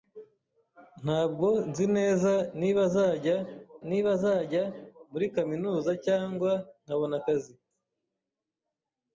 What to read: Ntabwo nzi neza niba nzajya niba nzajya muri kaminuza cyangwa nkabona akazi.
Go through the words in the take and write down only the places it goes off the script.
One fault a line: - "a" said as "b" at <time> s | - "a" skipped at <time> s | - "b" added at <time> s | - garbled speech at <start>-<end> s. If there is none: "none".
none